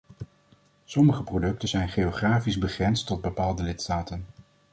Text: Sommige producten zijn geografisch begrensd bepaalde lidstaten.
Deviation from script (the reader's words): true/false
true